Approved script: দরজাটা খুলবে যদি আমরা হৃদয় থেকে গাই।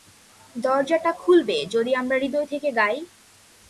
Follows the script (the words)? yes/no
yes